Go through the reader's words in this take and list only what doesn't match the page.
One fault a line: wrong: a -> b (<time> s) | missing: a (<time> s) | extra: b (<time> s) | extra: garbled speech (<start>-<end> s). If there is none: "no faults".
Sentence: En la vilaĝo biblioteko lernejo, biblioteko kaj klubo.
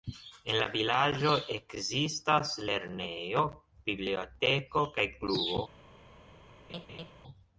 wrong: biblioteko -> ekzistas (1.6 s)